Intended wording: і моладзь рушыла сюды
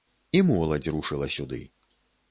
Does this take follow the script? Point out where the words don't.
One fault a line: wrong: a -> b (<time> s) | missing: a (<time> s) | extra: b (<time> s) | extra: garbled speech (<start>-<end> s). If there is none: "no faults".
no faults